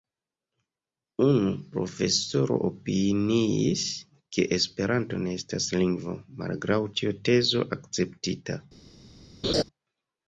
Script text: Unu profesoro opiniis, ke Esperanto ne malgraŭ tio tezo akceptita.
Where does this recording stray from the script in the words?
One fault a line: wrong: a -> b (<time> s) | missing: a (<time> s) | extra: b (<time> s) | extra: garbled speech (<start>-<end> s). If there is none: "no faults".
extra: estas lingvo (5.4 s)